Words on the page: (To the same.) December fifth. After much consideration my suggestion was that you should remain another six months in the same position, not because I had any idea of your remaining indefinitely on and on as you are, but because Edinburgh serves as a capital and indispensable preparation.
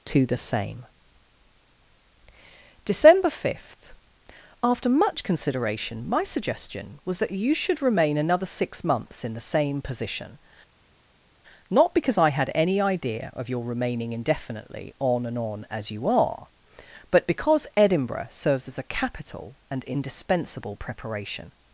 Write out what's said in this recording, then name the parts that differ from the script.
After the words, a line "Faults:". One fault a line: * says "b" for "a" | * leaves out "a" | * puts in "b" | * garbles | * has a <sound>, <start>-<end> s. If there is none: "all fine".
(To the same.) December fifth. After much consideration my suggestion was that you should remain another six months in the same position, not because I had any idea of your remaining indefinitely on and on as you are, but because Edinburgh serves as a capital and indispensable preparation.
Faults:
all fine